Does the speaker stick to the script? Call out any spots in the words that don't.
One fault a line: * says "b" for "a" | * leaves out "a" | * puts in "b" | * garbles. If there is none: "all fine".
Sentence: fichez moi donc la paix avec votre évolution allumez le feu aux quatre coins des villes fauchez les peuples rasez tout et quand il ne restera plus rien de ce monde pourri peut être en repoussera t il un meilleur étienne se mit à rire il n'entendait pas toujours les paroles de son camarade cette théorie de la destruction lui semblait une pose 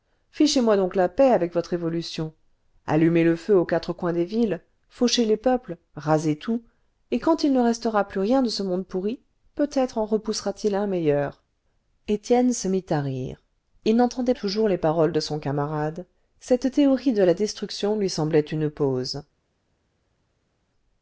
* leaves out "pas"